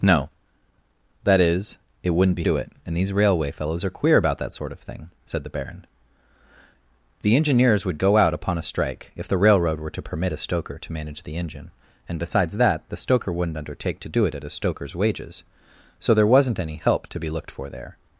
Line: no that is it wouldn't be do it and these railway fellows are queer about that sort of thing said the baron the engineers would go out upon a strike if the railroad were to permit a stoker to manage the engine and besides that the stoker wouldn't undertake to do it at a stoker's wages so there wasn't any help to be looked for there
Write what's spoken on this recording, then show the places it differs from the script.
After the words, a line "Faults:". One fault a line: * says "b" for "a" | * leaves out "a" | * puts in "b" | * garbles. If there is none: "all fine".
no that is it wouldn't be do it and these railway fellows are queer about that sort of thing said the baron the engineers would go out upon a strike if the railroad were to permit a stoker to manage the engine and besides that the stoker wouldn't undertake to do it at a stoker's wages so there wasn't any help to be looked for there
Faults:
all fine